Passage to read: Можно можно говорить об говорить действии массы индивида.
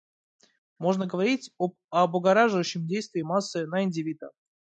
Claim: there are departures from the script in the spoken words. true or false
true